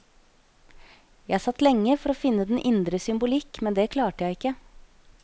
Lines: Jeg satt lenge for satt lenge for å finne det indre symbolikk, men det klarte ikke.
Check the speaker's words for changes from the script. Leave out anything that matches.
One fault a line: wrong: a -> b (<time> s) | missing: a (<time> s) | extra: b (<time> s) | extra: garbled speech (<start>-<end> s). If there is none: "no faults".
missing: satt lenge for (2.1 s)
wrong: det -> den (2.5 s)
extra: jeg (4.3 s)